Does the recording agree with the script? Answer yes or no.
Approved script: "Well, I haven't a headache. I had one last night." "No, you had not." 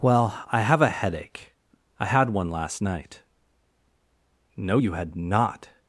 no